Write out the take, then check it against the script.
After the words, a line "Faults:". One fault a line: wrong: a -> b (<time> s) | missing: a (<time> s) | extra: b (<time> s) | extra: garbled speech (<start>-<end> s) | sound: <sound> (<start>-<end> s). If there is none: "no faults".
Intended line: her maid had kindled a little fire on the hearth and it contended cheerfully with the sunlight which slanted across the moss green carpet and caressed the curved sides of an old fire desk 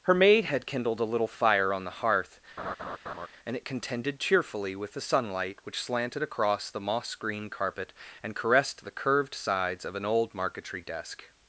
her maid had kindled a little fire on the hearth and it contended cheerfully with the sunlight which slanted across the moss green carpet and caressed the curved sides of an old marquetry desk
Faults:
sound: laugh (2.6-3.3 s)
wrong: fire -> marquetry (10.3 s)